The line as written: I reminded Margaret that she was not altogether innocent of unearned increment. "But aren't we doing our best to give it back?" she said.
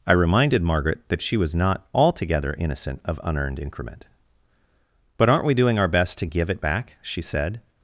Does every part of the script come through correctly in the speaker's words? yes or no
yes